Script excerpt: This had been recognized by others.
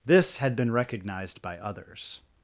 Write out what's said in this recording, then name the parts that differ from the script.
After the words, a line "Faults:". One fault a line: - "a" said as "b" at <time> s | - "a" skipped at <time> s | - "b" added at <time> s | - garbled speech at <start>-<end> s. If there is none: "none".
This had been recognized by others.
Faults:
none